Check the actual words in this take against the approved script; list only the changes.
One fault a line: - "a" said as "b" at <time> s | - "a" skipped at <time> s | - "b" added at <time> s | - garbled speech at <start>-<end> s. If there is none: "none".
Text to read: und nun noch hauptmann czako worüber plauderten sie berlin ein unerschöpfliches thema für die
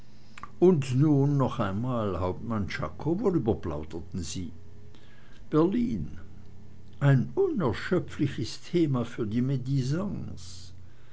- "einmal" added at 1.6 s